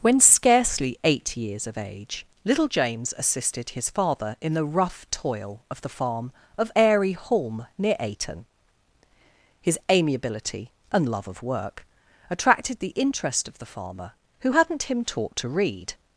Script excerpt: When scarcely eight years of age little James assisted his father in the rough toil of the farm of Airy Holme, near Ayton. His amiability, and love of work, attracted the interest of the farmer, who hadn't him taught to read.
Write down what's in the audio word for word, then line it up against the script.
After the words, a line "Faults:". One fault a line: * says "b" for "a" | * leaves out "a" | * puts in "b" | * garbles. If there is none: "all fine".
When scarcely eight years of age little James assisted his father in the rough toil of the farm of Airy Holme, near Ayton. His amiability, and love of work, attracted the interest of the farmer, who hadn't him taught to read.
Faults:
all fine